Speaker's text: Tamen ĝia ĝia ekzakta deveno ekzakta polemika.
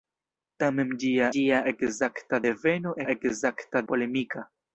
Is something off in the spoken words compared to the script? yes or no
no